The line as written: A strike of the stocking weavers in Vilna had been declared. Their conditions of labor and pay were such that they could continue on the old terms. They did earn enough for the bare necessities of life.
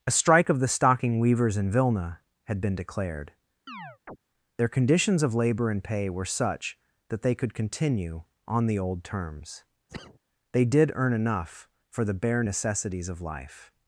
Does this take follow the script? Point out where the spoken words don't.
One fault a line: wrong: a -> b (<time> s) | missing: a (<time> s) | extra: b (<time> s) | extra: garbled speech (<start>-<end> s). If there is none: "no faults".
no faults